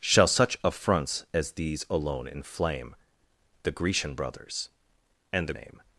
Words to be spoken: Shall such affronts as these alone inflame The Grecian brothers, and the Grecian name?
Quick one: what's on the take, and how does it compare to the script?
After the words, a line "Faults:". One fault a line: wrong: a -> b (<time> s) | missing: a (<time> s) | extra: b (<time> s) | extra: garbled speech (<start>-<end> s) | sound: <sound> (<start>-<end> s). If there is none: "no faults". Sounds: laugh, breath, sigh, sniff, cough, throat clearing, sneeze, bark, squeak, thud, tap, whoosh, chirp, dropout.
Shall such affronts as these alone inflame The Grecian brothers, and the Name?
Faults:
missing: Grecian (5.5 s)